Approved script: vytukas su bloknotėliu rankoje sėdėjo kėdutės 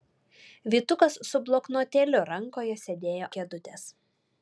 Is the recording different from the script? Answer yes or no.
no